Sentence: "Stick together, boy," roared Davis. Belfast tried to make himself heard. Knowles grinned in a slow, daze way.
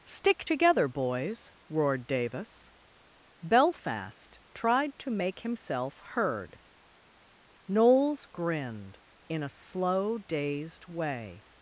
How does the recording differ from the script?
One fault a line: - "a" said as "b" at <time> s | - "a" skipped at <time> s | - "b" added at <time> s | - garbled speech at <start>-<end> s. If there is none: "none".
- "boy" said as "boys" at 0.9 s
- "daze" said as "dazed" at 10.2 s